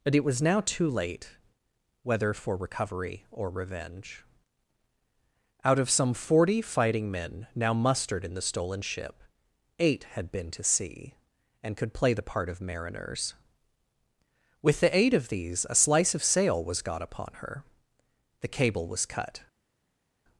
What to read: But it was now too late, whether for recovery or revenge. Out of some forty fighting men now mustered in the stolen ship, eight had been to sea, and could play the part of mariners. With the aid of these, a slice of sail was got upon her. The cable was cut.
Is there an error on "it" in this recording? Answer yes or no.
no